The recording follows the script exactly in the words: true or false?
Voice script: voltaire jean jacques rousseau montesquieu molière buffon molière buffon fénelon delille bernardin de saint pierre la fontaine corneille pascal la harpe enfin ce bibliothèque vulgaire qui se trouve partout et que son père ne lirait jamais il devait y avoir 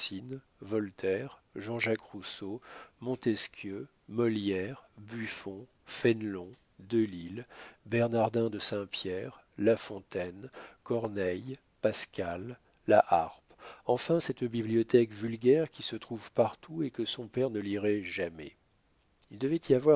false